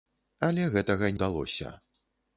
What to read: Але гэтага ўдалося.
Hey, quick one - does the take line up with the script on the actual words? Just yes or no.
yes